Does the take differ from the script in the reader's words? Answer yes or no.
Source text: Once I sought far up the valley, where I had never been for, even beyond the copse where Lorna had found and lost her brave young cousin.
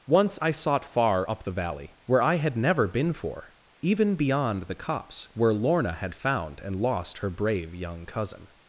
no